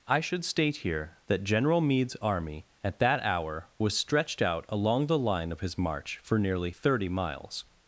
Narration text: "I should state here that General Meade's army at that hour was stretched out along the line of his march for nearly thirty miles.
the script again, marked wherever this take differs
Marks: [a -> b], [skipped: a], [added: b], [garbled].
"I should state here that General Meade's army at that hour was stretched out along the line of his march for nearly thirty miles.